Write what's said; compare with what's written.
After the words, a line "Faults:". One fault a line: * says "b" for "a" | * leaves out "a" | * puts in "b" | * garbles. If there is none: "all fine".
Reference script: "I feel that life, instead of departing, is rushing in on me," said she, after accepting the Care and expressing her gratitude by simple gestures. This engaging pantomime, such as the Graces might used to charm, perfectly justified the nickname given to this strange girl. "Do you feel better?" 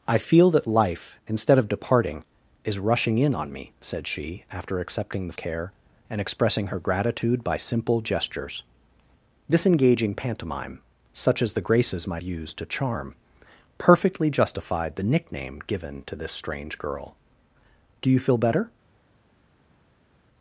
"I feel that life, instead of departing, is rushing in on me," said she, after accepting the Care and expressing her gratitude by simple gestures. This engaging pantomime, such as the Graces might used to charm, perfectly justified the nickname given to this strange girl. "Do you feel better?"
Faults:
all fine